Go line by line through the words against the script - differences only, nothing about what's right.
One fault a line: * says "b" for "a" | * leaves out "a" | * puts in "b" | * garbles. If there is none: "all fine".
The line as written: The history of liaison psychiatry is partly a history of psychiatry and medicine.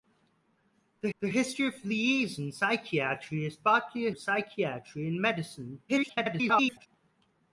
* puts in "the"
* leaves out "history"
* garbles